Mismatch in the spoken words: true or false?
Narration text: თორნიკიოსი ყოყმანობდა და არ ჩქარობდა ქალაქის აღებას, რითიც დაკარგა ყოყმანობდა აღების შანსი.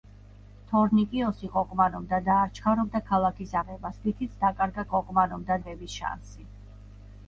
false